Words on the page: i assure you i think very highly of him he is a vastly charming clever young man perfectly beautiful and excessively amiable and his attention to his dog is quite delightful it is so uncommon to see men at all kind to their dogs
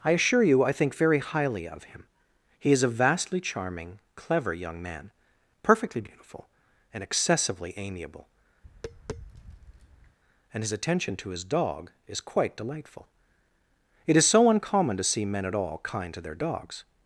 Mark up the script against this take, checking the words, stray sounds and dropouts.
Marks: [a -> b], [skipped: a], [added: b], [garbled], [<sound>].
i assure you i think very highly of him he is a vastly charming clever young man perfectly beautiful and excessively amiable [tap] and his attention to his dog is quite delightful it is so uncommon to see men at all kind to their dogs